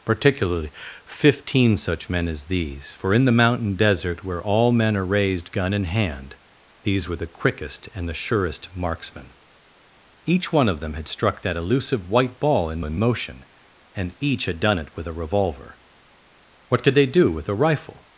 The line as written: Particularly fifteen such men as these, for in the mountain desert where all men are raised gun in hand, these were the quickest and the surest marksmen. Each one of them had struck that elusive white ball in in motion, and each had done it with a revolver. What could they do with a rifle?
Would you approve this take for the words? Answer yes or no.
yes